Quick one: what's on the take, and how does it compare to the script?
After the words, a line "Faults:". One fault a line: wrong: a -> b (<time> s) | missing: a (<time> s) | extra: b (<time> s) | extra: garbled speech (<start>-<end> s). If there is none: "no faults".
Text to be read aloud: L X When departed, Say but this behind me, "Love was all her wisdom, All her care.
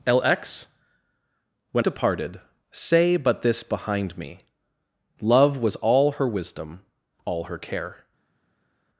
L X When departed, Say but this behind me, "Love was all her wisdom, All her care.
Faults:
no faults